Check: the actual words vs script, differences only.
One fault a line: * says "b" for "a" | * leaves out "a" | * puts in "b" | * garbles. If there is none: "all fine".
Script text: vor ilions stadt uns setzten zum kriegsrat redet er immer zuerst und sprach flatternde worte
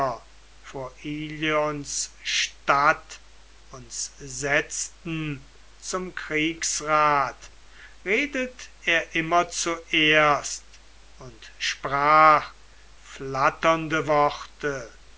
all fine